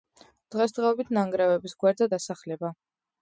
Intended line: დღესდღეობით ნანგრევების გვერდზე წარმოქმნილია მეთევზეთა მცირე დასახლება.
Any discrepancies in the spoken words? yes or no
yes